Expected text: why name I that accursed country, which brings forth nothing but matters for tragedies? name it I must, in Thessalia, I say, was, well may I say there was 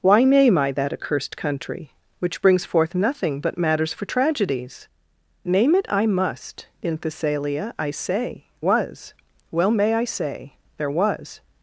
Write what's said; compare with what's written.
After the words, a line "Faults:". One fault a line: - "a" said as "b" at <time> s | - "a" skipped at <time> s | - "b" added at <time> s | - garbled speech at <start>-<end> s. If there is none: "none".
why name I that accursed country, which brings forth nothing but matters for tragedies? name it I must, in Thessalia, I say, was, well may I say there was
Faults:
none